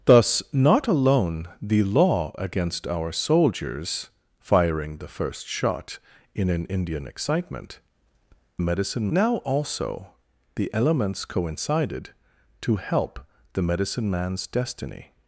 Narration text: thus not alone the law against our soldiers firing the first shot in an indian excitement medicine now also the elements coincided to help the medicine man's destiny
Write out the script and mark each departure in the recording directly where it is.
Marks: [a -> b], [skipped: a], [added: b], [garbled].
thus not alone the law against our soldiers firing the first shot in an indian excitement medicine now also the elements coincided to help the medicine man's destiny